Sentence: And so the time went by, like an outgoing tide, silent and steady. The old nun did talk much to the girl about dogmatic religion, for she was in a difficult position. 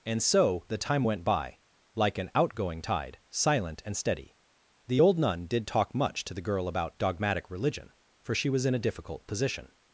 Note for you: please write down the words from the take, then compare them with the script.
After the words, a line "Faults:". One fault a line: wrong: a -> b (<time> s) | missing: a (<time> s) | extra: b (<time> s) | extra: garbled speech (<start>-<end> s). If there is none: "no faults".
And so the time went by, like an outgoing tide, silent and steady. The old nun did talk much to the girl about dogmatic religion, for she was in a difficult position.
Faults:
no faults